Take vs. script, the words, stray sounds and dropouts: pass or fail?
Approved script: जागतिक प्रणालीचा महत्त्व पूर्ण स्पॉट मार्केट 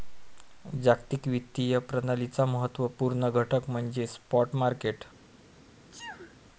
fail